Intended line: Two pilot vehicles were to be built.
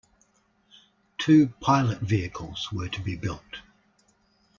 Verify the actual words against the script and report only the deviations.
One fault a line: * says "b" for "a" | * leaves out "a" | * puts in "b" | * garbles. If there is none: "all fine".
all fine